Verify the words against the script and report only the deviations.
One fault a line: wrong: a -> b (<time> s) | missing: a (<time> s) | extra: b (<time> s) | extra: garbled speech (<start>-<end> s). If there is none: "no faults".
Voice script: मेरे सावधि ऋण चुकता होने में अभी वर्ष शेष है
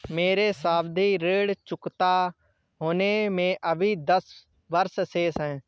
extra: दस (4.0 s)